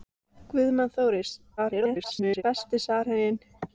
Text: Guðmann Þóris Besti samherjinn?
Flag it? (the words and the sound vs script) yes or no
yes